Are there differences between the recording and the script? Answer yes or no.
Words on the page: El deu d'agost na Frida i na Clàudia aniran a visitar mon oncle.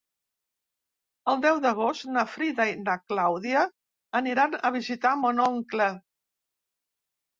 no